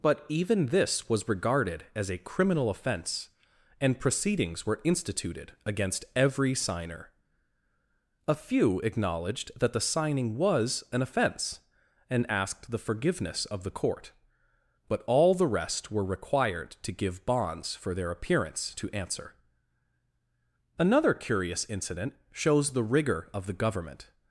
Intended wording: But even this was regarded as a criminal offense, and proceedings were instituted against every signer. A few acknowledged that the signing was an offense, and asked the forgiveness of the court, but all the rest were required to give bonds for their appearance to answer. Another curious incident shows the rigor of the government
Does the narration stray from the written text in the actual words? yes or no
no